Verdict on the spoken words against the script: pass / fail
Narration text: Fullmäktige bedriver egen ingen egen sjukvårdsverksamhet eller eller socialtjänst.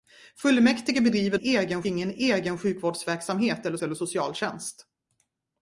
pass